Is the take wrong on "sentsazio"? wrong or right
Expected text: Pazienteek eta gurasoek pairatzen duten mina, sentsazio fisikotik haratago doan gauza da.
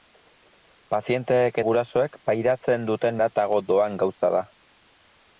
wrong